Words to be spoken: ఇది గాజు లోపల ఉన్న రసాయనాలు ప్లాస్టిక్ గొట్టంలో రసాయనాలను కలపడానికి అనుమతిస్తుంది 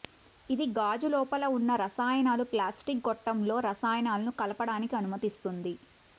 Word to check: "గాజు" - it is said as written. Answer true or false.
true